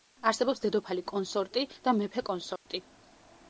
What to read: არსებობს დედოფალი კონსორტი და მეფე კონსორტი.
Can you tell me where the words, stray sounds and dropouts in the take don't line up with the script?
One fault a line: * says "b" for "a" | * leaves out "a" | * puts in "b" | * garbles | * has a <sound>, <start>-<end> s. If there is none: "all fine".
* has a dropout, 2.6-2.7 s